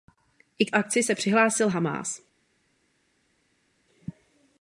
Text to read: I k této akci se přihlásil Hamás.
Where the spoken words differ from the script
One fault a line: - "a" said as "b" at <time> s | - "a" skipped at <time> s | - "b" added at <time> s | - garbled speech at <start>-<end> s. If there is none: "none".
- "této" skipped at 0.7 s